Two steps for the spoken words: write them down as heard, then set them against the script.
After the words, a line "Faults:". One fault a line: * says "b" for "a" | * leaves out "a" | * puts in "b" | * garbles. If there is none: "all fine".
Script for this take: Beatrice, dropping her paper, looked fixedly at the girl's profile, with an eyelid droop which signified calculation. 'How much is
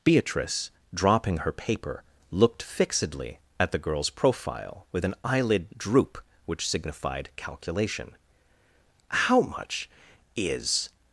Beatrice, dropping her paper, looked fixedly at the girl's profile, with an eyelid droop which signified calculation. 'How much is
Faults:
all fine